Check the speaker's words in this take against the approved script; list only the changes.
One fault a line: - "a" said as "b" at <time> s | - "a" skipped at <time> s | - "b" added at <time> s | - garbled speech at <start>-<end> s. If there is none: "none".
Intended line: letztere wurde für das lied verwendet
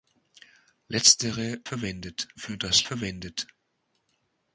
- "wurde" said as "verwendet" at 1.6 s
- "lied" skipped at 2.9 s